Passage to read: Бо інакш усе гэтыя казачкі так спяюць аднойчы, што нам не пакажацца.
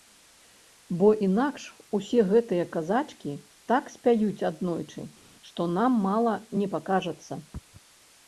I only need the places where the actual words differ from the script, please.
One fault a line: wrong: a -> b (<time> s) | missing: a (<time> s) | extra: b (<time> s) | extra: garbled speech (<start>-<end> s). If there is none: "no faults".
extra: мала (6.1 s)